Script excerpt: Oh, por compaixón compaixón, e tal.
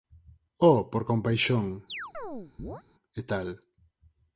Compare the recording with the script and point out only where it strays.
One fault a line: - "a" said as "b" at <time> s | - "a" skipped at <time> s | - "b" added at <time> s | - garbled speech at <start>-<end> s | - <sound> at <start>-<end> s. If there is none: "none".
- "compaixón" skipped at 1.6 s
- chirp at 1.9-2.8 s